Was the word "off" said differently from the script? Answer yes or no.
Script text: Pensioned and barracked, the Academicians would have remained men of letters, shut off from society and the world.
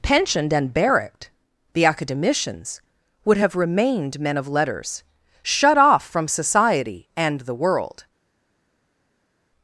no